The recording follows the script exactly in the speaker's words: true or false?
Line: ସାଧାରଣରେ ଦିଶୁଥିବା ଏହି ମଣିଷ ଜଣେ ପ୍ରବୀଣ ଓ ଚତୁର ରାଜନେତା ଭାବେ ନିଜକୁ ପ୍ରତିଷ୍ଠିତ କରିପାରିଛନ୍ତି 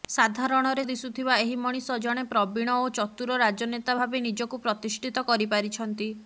true